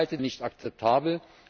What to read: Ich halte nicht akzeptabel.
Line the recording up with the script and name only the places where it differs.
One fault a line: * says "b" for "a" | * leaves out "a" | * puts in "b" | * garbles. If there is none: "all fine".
all fine